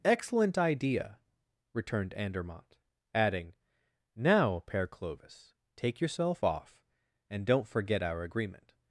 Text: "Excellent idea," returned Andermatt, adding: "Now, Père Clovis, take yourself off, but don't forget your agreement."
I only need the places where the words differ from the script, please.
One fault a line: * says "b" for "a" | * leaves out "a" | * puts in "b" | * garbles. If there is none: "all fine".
* says "and" for "but"
* says "our" for "your"